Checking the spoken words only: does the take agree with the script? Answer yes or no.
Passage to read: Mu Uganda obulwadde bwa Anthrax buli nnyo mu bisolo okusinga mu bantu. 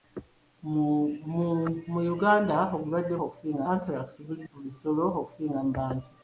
no